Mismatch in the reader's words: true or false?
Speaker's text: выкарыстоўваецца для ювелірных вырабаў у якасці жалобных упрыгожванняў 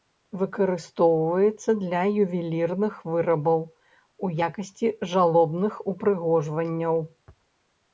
false